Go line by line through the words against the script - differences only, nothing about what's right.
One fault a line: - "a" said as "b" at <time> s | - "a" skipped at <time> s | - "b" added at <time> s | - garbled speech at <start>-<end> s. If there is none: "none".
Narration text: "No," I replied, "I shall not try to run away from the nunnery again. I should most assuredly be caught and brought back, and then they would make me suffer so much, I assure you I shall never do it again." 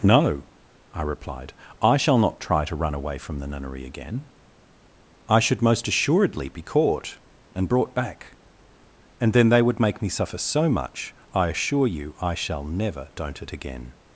- "do" said as "don't" at 13.2 s